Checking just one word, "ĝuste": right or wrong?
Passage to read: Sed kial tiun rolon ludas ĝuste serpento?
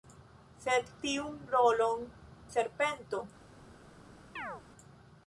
wrong